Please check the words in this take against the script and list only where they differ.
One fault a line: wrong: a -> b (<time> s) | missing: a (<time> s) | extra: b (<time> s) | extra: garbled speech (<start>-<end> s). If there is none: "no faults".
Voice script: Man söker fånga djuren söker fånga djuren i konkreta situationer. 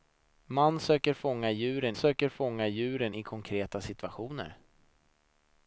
no faults